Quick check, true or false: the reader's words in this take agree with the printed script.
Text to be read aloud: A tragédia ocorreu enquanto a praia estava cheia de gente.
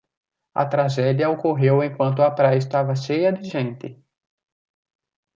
true